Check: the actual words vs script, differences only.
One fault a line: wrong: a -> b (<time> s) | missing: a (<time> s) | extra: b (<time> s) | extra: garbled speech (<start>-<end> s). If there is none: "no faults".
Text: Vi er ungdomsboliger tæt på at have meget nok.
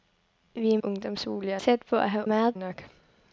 no faults